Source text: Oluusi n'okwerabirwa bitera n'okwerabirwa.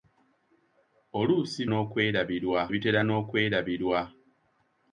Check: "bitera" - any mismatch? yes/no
no